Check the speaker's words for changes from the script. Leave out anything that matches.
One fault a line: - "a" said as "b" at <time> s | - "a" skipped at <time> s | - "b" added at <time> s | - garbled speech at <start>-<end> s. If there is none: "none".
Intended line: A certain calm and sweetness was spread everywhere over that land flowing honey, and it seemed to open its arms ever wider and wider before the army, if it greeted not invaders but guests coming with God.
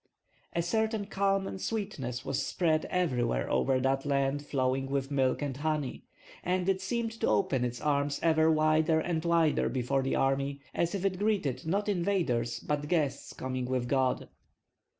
- "with milk and" added at 4.9 s
- "as" added at 10.7 s